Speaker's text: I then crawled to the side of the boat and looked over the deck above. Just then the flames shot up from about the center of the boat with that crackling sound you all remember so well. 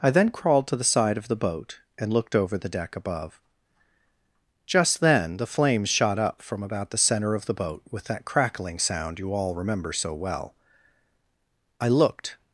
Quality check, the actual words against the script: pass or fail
fail